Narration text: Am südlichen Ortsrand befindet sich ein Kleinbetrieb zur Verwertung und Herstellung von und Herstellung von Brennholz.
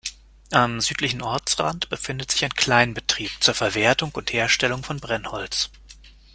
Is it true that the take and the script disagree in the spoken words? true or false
true